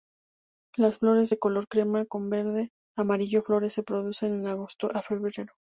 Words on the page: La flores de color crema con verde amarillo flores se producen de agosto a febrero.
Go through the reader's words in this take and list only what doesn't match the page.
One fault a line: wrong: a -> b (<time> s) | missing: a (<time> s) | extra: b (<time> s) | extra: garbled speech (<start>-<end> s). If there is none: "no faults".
wrong: La -> Las (0.8 s)